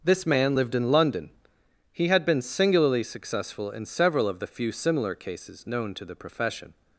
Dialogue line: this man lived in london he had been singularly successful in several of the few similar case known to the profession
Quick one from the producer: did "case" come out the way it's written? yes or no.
no